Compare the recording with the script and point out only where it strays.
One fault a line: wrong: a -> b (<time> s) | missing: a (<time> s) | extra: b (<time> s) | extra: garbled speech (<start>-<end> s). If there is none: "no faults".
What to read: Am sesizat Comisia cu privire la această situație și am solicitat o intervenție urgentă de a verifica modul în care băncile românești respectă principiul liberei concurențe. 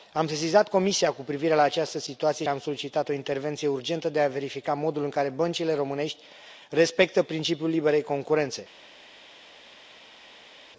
missing: și (2.5 s)